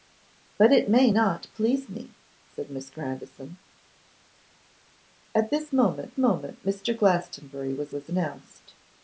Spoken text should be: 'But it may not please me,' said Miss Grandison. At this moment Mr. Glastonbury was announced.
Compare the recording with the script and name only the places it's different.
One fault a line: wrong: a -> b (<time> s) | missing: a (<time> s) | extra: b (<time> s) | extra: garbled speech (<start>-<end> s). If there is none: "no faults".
extra: moment (6.2 s)
extra: was (7.9 s)